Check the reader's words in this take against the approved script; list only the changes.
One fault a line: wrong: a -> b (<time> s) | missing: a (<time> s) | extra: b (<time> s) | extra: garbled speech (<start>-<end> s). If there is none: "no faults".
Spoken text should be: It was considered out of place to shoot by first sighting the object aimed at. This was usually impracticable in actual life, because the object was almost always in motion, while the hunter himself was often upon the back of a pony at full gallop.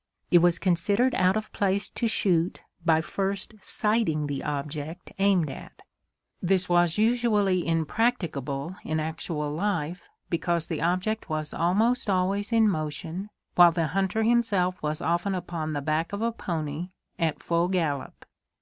no faults